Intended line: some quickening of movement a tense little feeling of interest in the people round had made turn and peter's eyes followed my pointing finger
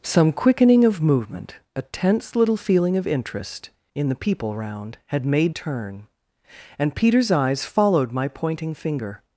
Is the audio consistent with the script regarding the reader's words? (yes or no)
yes